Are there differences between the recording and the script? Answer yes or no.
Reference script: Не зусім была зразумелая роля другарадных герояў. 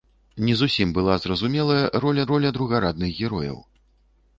yes